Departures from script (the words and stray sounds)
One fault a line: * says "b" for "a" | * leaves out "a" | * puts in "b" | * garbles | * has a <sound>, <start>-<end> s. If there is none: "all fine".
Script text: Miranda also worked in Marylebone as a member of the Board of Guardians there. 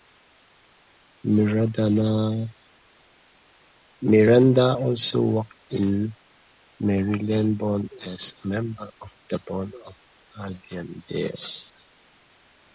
all fine